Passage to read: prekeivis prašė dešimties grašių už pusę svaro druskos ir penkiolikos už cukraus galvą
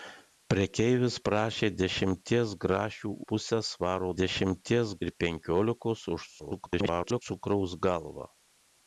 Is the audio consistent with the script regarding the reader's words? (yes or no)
no